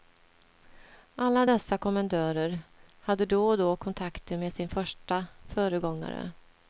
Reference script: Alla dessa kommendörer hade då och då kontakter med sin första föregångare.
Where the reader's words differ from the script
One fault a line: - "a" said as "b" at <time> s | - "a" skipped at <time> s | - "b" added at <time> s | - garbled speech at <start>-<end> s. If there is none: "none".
none